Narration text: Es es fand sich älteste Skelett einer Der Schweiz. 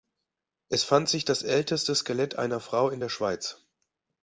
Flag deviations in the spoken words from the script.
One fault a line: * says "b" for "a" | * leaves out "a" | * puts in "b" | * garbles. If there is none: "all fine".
* leaves out "es"
* puts in "das"
* puts in "Frau in"